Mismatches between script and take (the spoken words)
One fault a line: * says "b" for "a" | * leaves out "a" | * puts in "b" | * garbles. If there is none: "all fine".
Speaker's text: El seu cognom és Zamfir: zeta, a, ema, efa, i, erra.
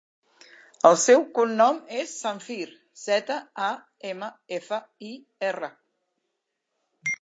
all fine